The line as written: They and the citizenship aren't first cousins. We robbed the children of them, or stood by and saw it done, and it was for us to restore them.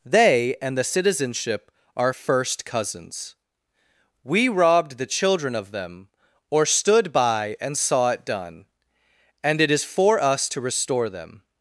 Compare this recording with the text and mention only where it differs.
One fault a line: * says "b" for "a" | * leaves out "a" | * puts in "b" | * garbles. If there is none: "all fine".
* says "are" for "aren't"
* says "is" for "was"